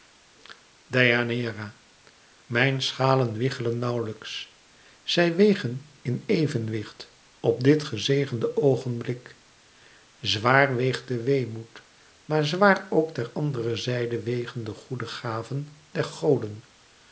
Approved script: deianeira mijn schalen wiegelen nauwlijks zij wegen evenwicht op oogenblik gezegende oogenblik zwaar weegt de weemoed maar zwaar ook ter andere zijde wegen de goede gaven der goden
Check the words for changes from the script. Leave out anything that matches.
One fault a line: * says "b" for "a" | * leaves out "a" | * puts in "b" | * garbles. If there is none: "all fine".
* puts in "in"
* says "dit" for "oogenblik"